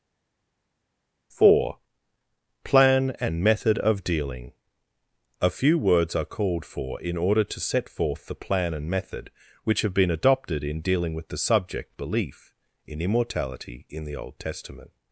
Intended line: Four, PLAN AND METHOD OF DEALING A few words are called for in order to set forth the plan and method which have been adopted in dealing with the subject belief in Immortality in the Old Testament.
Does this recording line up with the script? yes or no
yes